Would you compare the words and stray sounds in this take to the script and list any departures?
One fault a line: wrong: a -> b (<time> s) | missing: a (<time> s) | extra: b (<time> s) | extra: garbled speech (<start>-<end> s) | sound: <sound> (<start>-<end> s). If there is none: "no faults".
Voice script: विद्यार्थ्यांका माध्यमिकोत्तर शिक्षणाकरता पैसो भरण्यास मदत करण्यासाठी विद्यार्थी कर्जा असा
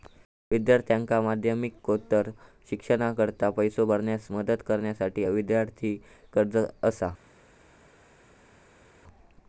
no faults